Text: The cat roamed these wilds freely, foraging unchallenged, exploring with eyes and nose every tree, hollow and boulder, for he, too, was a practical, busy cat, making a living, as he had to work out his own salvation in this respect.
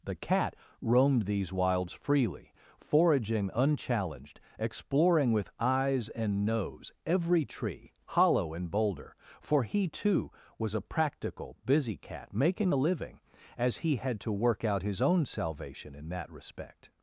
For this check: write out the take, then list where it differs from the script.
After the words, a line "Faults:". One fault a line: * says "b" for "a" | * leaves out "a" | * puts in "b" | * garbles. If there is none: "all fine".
The cat roamed these wilds freely, foraging unchallenged, exploring with eyes and nose every tree, hollow and boulder, for he, too, was a practical, busy cat, making a living, as he had to work out his own salvation in that respect.
Faults:
* says "that" for "this"